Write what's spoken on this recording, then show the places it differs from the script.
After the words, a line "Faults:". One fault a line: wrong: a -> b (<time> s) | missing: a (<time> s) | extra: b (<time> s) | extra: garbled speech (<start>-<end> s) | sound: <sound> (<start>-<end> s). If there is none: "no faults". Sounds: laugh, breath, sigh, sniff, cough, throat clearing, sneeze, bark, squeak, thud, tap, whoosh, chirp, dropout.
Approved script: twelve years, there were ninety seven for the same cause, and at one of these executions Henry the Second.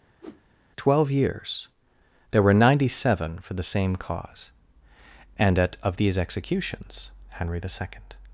twelve years, there were ninety seven for the same cause, and at of these executions Henry the Second.
Faults:
sound: whoosh (0.2-0.4 s)
missing: one (5.8 s)